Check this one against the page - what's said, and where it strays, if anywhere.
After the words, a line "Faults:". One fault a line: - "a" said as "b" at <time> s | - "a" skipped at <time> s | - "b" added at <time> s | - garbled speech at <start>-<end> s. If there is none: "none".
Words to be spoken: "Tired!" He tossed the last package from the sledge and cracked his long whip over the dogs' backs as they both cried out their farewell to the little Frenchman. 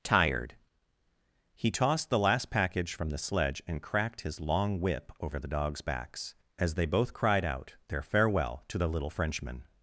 "Tired!" He tossed the last package from the sledge and cracked his long whip over the dogs' backs as they both cried out their farewell to the little Frenchman.
Faults:
none